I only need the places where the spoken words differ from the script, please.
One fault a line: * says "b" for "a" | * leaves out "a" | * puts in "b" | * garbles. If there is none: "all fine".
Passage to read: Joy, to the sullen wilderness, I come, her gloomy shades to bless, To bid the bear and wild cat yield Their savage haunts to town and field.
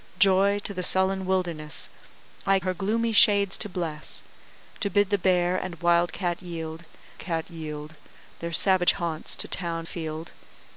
* leaves out "come"
* puts in "cat yield"
* leaves out "and"